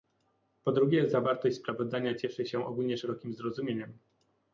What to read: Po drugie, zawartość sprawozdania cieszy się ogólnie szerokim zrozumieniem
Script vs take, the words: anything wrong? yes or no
no